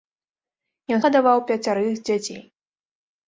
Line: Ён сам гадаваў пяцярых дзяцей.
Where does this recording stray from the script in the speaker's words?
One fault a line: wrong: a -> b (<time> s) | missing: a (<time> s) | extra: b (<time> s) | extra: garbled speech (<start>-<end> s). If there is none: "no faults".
missing: сам (1.0 s)